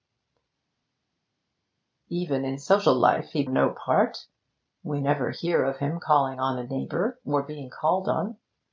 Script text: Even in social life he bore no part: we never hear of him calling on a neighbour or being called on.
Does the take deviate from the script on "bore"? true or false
true